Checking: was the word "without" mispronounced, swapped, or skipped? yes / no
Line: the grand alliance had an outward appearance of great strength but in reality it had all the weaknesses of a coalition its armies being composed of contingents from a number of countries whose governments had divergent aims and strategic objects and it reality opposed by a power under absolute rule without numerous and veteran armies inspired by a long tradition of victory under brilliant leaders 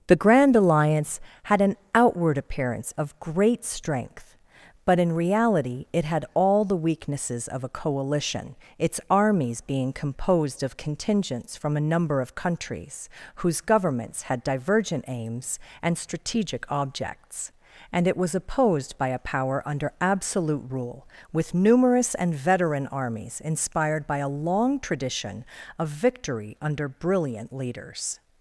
yes